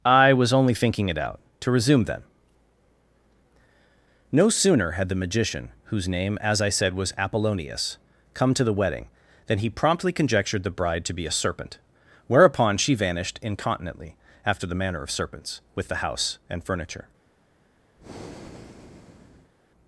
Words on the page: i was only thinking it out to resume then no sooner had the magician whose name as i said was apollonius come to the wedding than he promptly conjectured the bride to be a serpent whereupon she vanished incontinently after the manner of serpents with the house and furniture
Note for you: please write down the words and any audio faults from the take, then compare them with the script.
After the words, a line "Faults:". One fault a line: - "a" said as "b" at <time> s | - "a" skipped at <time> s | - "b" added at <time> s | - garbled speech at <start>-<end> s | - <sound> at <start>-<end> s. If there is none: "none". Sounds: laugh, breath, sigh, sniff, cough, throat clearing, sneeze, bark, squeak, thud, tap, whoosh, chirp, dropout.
i was only thinking it out to resume then no sooner had the magician whose name as i said was apollonius come to the wedding than he promptly conjectured the bride to be a serpent whereupon she vanished incontinently after the manner of serpents with the house and furniture
Faults:
- breath at 18.0-19.5 s